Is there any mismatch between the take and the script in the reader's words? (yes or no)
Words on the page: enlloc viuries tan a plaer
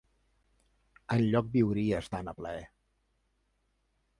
no